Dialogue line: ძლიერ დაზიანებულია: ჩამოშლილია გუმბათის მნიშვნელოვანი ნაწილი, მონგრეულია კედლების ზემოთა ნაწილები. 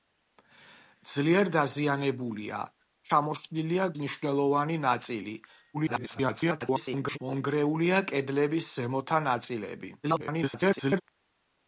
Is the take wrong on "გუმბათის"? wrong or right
wrong